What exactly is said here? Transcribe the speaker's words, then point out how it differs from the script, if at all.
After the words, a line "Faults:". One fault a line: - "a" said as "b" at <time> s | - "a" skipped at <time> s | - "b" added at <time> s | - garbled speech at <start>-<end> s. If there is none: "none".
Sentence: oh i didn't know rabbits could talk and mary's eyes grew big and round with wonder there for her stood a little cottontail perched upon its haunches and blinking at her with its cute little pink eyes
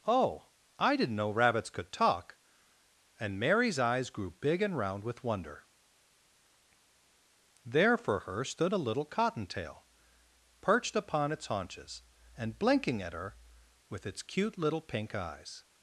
oh i didn't know rabbits could talk and mary's eyes grew big and round with wonder there for her stood a little cottontail perched upon its haunches and blinking at her with its cute little pink eyes
Faults:
none